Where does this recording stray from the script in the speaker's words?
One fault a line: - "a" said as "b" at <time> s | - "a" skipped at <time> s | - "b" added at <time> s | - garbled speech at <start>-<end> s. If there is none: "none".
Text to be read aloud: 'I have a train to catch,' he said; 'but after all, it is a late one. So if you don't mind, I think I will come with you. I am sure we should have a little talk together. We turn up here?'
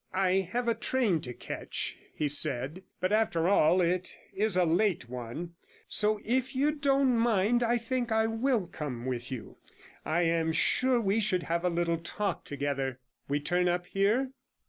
none